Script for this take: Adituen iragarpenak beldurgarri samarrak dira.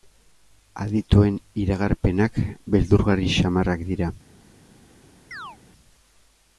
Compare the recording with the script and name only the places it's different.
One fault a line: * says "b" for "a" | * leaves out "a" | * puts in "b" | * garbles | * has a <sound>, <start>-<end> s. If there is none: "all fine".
* has a chirp, 5.3-5.6 s